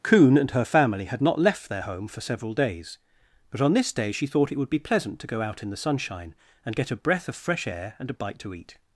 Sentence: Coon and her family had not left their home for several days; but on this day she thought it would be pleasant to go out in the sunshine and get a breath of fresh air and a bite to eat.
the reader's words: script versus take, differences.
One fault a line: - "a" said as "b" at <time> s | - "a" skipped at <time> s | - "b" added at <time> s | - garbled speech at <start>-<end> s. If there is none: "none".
none